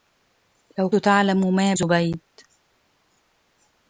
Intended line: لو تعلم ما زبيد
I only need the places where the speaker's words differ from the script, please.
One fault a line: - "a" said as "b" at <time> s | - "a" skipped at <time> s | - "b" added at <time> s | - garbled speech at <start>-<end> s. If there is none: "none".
none